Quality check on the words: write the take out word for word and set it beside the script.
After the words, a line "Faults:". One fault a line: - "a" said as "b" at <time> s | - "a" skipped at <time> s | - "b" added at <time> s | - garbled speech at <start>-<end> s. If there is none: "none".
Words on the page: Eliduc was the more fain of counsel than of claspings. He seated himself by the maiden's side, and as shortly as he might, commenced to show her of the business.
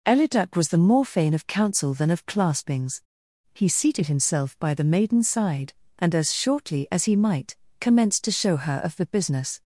Eliduc was the more fain of counsel than of claspings. He seated himself by the maiden's side, and as shortly as he might, commenced to show her of the business.
Faults:
none